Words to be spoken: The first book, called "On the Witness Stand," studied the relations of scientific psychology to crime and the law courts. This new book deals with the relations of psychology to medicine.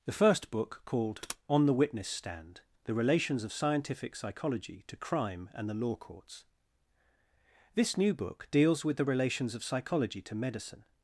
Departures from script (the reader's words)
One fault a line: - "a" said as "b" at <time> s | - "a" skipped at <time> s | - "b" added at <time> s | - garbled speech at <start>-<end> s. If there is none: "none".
- "studied" skipped at 2.6 s